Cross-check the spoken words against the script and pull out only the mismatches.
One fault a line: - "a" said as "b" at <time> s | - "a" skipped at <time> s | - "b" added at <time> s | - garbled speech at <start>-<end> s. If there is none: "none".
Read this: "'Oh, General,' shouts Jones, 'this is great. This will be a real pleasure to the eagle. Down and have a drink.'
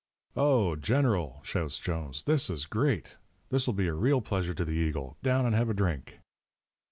none